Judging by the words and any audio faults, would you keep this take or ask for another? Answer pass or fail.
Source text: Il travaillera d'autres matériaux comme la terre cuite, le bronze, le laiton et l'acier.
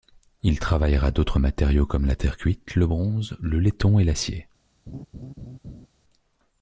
fail